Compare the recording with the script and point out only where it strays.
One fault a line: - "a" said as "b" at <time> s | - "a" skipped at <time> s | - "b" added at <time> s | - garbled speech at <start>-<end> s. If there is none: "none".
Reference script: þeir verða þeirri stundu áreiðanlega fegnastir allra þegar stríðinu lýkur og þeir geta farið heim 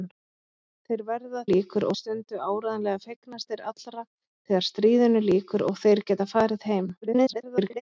- "þeirri" said as "lýkur" at 1.5 s
- garbled speech at 7.0-7.8 s